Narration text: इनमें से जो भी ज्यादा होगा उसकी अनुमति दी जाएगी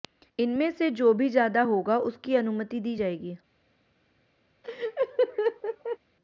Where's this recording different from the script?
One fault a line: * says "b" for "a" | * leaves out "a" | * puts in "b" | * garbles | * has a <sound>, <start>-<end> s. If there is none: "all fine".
* has a laugh, 4.6-6.0 s